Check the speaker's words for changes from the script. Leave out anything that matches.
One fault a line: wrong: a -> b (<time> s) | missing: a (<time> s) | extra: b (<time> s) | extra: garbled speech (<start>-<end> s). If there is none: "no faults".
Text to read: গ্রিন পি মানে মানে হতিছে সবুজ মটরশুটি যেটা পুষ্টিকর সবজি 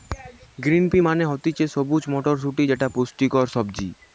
missing: মানে (1.2 s)